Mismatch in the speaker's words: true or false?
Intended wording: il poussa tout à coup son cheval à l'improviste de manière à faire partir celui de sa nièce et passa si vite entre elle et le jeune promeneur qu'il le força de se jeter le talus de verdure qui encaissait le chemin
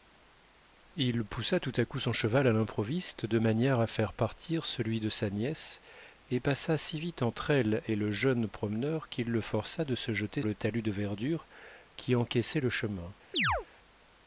false